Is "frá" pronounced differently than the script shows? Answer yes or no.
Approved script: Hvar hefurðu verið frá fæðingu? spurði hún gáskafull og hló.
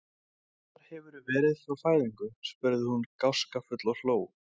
no